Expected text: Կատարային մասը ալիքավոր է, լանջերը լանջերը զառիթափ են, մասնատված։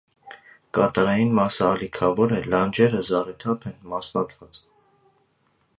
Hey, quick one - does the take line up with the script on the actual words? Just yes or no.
no